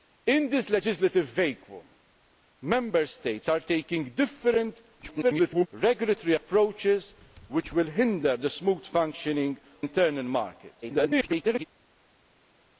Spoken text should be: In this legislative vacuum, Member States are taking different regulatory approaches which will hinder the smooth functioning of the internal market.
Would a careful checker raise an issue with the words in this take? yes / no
yes